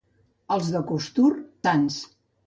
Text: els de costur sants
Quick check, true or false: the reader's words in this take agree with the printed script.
true